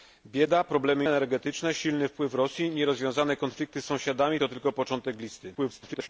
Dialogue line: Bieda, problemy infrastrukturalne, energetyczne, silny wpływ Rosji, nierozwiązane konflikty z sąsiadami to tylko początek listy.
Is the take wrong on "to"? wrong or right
right